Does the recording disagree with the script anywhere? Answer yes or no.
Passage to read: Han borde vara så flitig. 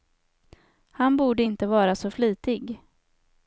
yes